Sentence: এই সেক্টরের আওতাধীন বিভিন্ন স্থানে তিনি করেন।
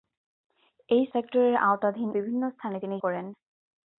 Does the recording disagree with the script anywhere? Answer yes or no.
no